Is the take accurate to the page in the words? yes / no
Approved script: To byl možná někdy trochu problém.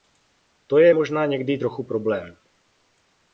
no